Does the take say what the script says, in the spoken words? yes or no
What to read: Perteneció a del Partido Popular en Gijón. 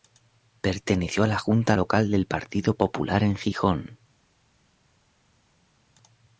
no